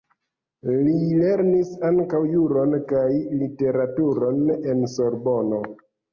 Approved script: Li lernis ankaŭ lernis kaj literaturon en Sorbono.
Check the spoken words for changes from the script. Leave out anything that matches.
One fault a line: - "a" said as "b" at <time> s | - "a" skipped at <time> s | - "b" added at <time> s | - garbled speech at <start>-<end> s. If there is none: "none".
- "lernis" said as "juron" at 2.3 s